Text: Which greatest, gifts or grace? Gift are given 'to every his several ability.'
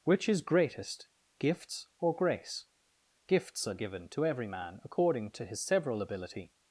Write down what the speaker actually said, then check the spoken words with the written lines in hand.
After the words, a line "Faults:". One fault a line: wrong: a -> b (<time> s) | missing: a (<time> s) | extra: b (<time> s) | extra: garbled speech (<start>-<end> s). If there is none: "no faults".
Which is greatest, gifts or grace? Gifts are given 'to every man according to his several ability.'
Faults:
extra: is (0.3 s)
wrong: Gift -> Gifts (3.3 s)
extra: man according to (4.5 s)